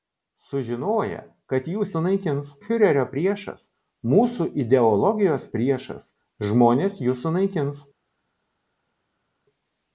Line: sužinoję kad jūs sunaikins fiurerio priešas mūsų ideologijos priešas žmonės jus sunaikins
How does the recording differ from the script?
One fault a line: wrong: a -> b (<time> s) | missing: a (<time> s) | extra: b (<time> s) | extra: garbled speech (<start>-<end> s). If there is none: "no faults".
no faults